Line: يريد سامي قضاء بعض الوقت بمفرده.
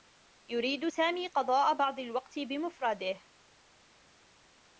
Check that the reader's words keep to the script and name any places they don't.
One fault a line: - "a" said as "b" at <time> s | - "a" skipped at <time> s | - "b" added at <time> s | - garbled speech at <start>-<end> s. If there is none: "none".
none